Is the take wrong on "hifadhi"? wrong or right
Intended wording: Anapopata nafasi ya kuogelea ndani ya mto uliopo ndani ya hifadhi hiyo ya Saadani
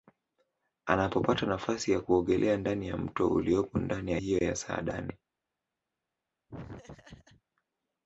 wrong